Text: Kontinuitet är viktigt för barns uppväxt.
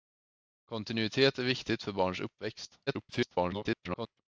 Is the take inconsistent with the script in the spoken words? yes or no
yes